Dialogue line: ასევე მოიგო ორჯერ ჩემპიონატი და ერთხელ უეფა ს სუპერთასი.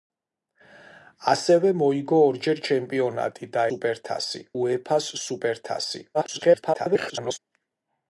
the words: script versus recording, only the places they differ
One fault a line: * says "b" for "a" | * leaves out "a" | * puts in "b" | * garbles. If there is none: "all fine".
* says "სუპერთასი" for "ერთხელ"
* garbles